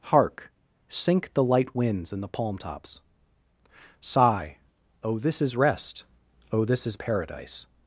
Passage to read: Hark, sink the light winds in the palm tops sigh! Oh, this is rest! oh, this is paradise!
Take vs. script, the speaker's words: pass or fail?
pass